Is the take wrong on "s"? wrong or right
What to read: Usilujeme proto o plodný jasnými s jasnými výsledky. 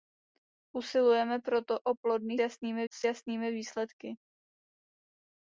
right